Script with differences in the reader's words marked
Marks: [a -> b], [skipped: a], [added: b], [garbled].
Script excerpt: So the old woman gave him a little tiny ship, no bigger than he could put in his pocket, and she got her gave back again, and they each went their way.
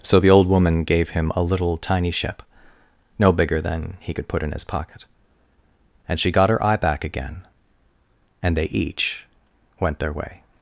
So the old woman gave him a little tiny ship, no bigger than he could put in his pocket, and she got her [gave -> eye] back again, and they each went their way.